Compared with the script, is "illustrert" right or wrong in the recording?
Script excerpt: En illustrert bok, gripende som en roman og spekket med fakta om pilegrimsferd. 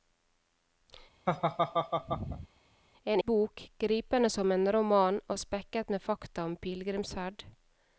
wrong